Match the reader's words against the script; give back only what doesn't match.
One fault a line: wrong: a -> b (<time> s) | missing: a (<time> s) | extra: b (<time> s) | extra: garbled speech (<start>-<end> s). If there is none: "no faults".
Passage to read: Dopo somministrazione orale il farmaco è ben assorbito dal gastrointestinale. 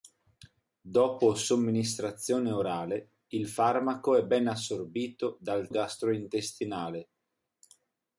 no faults